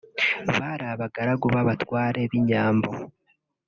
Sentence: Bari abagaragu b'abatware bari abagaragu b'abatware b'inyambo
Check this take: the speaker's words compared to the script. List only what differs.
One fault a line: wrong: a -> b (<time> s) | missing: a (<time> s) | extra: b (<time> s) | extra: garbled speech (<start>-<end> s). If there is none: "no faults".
missing: bari abagaragu b'abatware (2.2 s)